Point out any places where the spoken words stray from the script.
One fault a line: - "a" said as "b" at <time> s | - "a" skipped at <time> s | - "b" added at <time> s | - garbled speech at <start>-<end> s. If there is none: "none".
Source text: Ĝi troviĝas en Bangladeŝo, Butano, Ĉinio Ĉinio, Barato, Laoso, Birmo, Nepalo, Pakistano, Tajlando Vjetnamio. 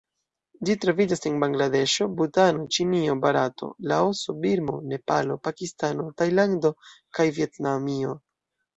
- "Ĉinio" skipped at 3.2 s
- "kaj" added at 7.2 s